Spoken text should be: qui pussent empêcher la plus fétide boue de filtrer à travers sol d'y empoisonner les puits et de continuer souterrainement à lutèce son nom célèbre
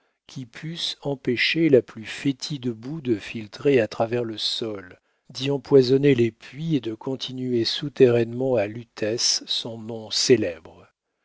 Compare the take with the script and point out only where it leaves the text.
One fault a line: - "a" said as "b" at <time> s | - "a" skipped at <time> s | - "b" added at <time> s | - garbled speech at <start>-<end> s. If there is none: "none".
- "le" added at 4.2 s